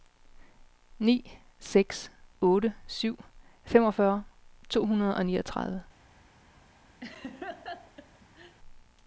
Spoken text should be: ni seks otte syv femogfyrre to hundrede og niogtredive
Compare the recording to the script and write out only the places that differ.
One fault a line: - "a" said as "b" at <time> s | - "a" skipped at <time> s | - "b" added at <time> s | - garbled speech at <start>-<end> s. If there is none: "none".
none